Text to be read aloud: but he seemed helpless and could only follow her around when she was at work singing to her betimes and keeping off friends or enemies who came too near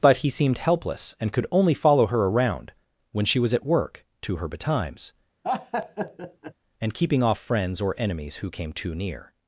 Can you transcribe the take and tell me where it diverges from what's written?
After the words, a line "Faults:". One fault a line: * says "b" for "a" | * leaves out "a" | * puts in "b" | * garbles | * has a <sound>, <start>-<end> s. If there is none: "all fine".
but he seemed helpless and could only follow her around when she was at work to her betimes and keeping off friends or enemies who came too near
Faults:
* leaves out "singing"
* has a laugh, 5.4-6.5 s